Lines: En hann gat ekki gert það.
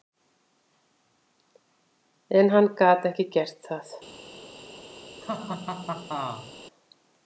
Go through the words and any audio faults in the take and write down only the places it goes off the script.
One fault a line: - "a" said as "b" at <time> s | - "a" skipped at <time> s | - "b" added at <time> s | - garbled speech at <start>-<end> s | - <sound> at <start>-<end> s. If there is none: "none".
- laugh at 5.2-6.5 s